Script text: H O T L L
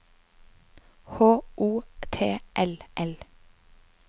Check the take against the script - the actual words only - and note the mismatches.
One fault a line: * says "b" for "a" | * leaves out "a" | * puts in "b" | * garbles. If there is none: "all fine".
all fine